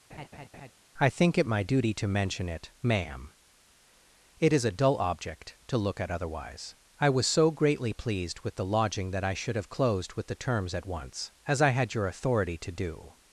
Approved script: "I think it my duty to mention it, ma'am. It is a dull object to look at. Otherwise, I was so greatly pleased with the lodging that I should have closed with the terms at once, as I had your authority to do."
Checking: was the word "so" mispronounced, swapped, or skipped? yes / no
no